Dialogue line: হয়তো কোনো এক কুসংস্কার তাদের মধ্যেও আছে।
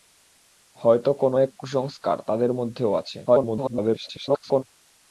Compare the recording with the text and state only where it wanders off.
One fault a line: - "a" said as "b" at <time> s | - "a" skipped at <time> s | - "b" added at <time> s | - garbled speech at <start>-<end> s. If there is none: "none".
- garbled speech at 3.3-4.6 s